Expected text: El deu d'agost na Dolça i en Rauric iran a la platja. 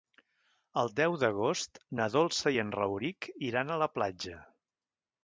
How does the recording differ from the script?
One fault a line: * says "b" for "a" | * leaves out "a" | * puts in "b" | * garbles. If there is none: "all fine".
all fine